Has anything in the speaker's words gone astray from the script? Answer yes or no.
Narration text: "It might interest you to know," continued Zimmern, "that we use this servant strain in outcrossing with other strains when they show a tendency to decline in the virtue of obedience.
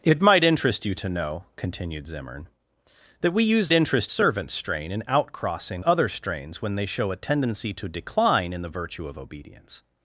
yes